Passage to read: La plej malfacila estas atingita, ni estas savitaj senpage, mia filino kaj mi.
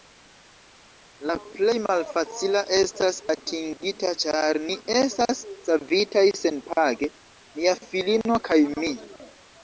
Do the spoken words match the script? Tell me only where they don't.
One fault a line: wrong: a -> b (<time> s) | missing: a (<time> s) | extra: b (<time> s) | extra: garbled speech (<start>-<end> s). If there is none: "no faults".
extra: ĉar (4.2 s)